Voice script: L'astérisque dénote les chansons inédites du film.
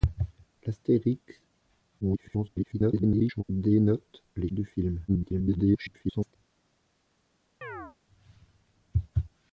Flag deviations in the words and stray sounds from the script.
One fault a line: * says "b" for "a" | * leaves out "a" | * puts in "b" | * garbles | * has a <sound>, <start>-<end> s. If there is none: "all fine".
* garbles
* leaves out "chansons inédites"
* garbles
* has a chirp, 7.6-8.0 s